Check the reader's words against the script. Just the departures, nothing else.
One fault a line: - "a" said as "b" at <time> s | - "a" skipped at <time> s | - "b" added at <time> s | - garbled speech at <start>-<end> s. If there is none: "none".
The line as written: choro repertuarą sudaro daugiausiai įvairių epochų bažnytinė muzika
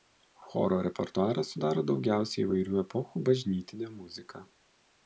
none